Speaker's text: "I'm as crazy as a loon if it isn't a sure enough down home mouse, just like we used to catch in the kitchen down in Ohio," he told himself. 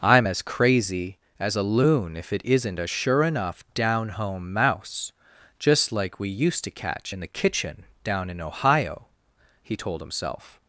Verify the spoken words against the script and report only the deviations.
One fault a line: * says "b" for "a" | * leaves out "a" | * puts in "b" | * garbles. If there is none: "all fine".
all fine